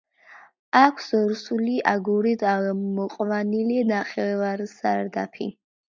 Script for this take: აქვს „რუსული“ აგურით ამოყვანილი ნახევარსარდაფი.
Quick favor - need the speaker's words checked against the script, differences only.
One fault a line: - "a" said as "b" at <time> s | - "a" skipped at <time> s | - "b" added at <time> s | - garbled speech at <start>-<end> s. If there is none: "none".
none